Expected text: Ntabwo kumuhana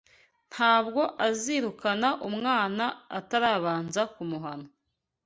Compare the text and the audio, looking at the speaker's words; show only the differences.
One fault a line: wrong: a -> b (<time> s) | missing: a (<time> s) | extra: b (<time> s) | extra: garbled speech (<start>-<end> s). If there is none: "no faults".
extra: azirukana umwana atarabanza (1.3 s)